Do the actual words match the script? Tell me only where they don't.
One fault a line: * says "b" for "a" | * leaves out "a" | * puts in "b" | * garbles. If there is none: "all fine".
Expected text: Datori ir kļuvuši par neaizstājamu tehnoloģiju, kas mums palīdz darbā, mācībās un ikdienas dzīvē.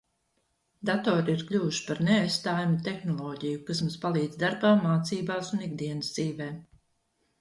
all fine